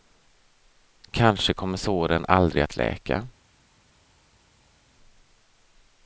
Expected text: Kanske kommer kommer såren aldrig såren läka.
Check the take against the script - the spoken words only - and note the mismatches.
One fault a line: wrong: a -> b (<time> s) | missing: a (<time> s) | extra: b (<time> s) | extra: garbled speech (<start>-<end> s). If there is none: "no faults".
missing: kommer (1.8 s)
wrong: såren -> att (2.6 s)